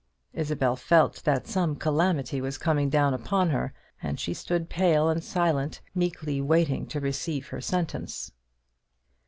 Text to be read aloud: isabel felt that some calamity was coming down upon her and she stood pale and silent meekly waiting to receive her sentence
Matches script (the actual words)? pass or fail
pass